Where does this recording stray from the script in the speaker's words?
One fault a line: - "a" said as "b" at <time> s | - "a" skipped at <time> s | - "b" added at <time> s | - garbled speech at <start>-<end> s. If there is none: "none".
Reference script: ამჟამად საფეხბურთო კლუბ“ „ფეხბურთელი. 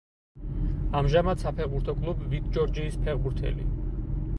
- "ვიტ ჯორჯიის" added at 2.3 s